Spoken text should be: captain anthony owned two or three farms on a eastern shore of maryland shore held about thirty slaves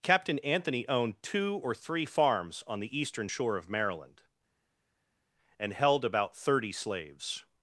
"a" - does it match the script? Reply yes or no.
no